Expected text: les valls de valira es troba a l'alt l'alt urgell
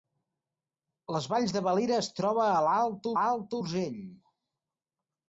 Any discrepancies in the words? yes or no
no